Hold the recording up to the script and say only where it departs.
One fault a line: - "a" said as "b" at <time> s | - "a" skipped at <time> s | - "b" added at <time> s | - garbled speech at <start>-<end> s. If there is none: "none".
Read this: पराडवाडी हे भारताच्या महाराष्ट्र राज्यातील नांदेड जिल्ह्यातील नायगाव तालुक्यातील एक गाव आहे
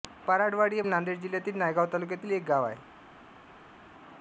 - "भारताच्या महाराष्ट्र राज्यातील" skipped at 0.8 s